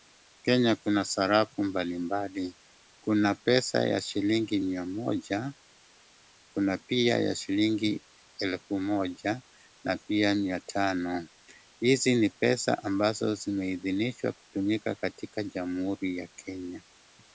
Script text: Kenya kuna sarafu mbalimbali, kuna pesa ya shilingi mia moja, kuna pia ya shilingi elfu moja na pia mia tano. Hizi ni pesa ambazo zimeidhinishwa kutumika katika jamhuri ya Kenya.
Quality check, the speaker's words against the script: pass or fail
pass